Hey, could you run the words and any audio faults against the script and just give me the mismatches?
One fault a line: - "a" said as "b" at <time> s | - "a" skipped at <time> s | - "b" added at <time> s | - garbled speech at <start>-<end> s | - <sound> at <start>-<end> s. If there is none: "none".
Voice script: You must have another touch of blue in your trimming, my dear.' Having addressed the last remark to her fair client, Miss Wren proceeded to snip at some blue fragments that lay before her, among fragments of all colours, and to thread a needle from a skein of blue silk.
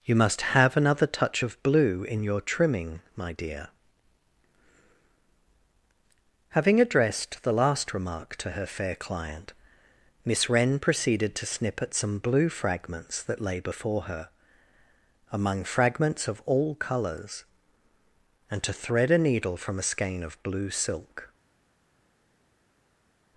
none